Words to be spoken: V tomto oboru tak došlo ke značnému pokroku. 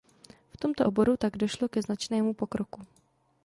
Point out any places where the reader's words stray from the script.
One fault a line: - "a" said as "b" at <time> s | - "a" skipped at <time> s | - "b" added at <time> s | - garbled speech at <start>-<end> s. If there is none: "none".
none